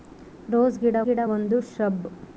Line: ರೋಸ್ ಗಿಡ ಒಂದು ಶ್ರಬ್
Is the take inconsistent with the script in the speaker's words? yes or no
yes